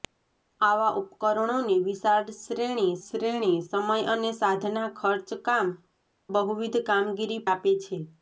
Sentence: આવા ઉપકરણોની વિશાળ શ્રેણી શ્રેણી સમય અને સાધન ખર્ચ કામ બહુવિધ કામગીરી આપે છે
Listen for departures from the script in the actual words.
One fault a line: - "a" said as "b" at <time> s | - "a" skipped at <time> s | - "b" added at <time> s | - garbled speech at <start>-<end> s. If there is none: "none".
none